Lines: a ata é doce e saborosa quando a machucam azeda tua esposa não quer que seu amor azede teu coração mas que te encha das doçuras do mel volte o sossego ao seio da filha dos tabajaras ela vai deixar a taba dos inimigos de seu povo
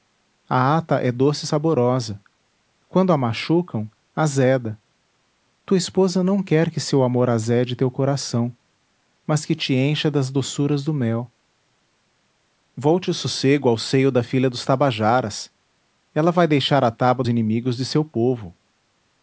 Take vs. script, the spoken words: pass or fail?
fail